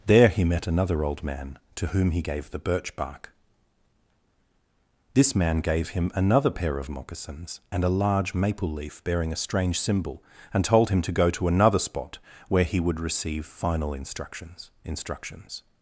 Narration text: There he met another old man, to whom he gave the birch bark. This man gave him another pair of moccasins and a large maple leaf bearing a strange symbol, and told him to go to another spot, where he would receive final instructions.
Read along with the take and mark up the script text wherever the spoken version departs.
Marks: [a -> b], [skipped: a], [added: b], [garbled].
There he met another old man, to whom he gave the birch bark. This man gave him another pair of moccasins and a large maple leaf bearing a strange symbol, and told him to go to another spot, where he would receive final instructions. [added: instructions]